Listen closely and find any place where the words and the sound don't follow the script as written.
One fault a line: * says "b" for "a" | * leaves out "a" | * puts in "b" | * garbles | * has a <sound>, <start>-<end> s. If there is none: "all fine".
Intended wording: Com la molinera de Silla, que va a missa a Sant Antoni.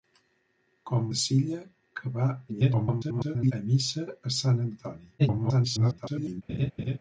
* leaves out "la molinera"
* garbles
* garbles
* has a laugh, 6.5-7.0 s